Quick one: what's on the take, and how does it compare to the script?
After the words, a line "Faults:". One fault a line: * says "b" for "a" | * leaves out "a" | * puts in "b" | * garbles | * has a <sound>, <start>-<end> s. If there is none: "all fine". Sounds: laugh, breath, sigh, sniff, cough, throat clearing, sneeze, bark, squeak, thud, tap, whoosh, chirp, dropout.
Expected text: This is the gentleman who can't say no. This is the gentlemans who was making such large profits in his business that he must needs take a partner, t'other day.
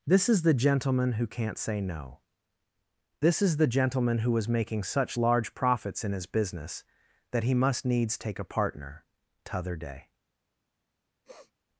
This is the gentleman who can't say no. This is the gentleman who was making such large profits in his business that he must needs take a partner, t'other day.
Faults:
* says "gentleman" for "gentlemans"
* has a sniff, 11.2-11.5 s